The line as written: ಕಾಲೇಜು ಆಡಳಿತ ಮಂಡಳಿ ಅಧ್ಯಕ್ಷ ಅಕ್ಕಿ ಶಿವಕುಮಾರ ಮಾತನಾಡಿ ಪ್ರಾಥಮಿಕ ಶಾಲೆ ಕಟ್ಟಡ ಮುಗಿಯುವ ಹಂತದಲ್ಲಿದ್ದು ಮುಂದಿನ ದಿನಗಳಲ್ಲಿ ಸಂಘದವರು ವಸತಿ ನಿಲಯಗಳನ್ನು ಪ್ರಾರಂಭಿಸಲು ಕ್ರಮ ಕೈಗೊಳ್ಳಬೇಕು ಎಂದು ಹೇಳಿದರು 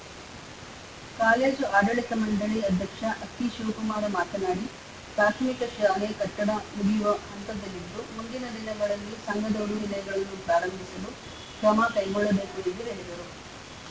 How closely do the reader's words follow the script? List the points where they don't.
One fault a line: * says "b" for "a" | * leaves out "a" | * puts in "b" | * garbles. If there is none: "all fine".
* leaves out "ವಸತಿ"